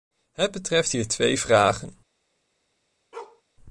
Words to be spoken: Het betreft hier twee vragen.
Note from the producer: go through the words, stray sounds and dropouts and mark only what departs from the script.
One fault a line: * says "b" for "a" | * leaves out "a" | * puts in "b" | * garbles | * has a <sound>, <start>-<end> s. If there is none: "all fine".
* has a bark, 3.1-3.4 s